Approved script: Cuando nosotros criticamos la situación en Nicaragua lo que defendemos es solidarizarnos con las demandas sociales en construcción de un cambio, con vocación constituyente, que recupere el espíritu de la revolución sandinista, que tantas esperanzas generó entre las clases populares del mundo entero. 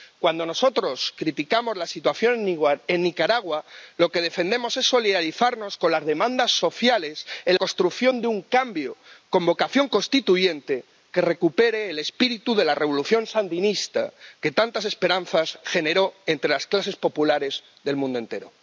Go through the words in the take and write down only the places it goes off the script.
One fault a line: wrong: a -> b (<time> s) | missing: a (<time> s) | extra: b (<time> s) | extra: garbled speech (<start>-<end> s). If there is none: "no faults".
no faults